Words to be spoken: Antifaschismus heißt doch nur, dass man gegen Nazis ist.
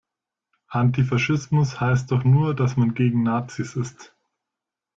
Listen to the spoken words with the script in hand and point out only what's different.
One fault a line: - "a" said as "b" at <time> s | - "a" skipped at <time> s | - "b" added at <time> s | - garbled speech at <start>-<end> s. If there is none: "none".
none